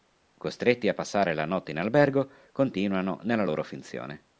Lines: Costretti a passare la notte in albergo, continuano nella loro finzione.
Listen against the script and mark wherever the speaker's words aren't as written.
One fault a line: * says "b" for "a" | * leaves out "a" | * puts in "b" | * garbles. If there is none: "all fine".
all fine